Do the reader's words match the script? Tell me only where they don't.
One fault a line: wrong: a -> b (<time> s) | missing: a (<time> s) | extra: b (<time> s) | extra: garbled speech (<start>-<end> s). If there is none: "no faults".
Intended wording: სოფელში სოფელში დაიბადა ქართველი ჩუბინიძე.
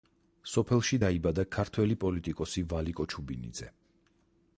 missing: სოფელში (1.0 s)
extra: პოლიტიკოსი ვალიკო (2.0 s)